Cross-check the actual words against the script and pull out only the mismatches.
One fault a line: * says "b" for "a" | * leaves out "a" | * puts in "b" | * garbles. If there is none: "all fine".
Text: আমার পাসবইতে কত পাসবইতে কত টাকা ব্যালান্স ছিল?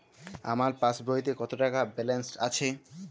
* leaves out "পাসবইতে কত"
* says "আছে" for "ছিল"